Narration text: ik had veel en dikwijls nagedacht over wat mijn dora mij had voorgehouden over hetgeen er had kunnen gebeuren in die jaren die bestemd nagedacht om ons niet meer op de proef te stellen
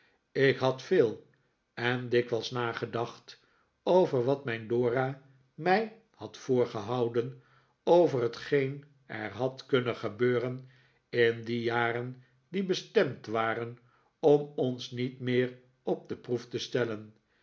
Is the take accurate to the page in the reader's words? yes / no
no